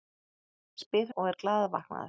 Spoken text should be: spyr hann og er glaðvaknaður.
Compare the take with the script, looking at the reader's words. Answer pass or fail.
fail